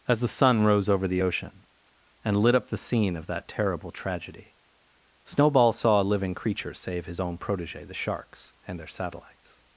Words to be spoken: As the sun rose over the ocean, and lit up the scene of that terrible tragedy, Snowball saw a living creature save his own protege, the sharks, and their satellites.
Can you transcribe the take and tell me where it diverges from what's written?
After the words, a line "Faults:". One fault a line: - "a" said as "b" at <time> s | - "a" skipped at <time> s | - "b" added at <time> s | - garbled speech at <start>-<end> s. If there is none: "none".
As the sun rose over the ocean, and lit up the scene of that terrible tragedy, Snowball saw a living creature save his own protege, the sharks, and their satellites.
Faults:
none